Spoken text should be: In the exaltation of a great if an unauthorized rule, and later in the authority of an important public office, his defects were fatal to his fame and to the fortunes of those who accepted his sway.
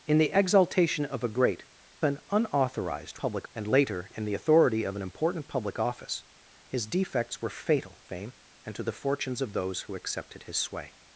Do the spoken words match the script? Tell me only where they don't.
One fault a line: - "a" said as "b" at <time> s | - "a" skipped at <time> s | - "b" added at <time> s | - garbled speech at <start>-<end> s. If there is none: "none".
- "if" skipped at 1.6 s
- "rule" said as "public" at 3.2 s
- "to his" skipped at 8.0 s